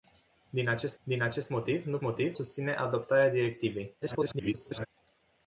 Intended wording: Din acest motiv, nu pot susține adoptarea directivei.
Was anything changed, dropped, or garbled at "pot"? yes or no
yes